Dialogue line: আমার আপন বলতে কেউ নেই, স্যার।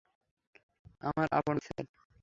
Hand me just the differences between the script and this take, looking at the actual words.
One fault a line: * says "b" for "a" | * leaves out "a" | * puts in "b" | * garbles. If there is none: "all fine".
* leaves out "বলতে কেউ নেই"